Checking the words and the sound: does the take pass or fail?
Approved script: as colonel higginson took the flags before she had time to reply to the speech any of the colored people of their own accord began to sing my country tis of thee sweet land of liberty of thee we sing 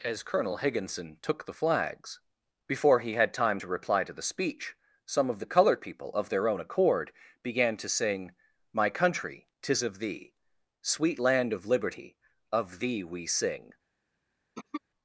fail